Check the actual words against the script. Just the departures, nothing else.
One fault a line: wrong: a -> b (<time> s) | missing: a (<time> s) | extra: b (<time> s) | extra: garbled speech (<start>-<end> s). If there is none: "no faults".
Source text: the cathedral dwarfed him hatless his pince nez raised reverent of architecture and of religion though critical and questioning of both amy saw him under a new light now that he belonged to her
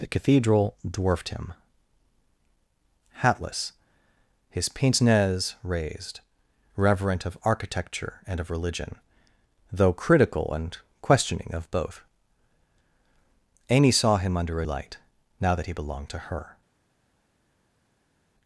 missing: new (14.6 s)